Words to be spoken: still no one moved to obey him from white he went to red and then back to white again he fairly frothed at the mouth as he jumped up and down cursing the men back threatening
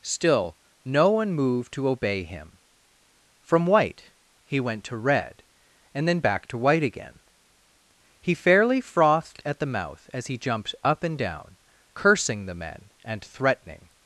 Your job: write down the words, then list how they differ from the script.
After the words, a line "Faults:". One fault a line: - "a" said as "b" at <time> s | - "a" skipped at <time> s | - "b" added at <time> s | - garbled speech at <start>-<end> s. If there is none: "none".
still no one moved to obey him from white he went to red and then back to white again he fairly frothed at the mouth as he jumped up and down cursing the men and threatening
Faults:
- "back" said as "and" at 13.1 s